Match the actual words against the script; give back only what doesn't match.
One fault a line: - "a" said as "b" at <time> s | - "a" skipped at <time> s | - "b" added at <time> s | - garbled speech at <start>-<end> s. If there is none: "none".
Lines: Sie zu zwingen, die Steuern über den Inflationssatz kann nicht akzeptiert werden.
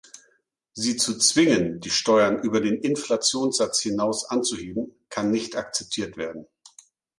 - "hinaus anzuheben" added at 3.8 s